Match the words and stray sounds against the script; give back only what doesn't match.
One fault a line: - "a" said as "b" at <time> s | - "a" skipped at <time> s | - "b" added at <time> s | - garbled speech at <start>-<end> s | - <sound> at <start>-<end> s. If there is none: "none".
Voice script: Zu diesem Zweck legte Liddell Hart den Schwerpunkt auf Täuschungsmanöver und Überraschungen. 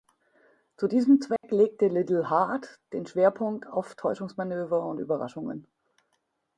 - dropout at 1.4-1.4 s